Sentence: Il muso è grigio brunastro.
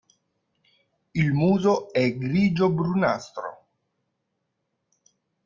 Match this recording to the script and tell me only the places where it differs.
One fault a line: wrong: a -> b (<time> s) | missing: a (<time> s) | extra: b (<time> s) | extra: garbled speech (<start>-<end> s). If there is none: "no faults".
no faults